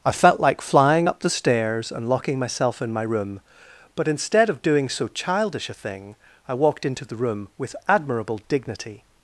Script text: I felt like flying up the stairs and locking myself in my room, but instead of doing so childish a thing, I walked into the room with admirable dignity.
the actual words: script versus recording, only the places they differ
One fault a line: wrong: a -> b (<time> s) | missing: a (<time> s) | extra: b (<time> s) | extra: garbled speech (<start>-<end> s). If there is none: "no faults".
no faults